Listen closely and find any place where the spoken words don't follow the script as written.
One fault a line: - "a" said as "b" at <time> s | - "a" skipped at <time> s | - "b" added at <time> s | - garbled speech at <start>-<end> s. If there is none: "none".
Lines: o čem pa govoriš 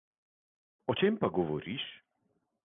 none